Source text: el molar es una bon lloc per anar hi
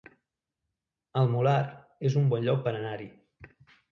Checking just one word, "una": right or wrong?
wrong